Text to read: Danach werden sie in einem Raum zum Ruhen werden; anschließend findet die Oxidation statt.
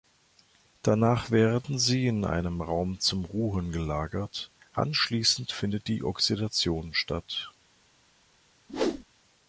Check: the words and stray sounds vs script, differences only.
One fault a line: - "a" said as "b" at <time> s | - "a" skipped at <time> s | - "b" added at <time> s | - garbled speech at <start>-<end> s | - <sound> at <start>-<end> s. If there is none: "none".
- "werden" said as "gelagert" at 3.7 s
- whoosh at 8.7-9.0 s